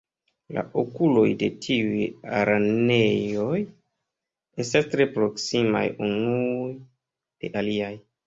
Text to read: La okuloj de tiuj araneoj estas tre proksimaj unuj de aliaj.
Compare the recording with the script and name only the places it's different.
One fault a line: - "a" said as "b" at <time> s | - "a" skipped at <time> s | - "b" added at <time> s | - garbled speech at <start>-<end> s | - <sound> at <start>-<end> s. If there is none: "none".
none